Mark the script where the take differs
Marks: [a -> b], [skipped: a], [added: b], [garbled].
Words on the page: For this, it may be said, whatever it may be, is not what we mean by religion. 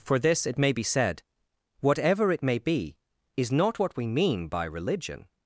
For this, it may be said, whatever it may be, is not what we mean by religion.